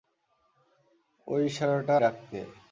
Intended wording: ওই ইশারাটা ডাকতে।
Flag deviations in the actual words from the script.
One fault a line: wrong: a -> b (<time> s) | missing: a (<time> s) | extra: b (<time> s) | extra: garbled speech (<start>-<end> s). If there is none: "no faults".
no faults